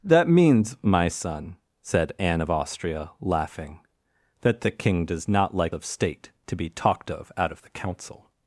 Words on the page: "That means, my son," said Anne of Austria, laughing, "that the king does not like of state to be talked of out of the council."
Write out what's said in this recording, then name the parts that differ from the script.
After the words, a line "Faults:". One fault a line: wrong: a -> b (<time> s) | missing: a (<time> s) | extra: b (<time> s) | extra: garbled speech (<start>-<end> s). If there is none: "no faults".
"That means, my son," said Anne of Austria, laughing, "that the king does not like of state to be talked of out of the council."
Faults:
no faults